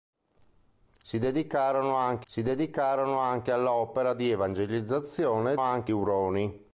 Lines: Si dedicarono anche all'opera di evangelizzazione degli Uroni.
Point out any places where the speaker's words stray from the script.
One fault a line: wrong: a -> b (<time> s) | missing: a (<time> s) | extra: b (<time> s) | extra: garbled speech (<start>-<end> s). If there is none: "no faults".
extra: si dedicarono anche (2.3 s)
wrong: degli -> anche (5.6 s)